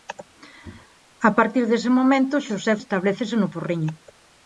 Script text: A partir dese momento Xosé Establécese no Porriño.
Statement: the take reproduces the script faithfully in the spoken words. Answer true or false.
true